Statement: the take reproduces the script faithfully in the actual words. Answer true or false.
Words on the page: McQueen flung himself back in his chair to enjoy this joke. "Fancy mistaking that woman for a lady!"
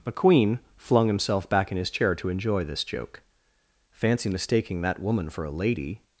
true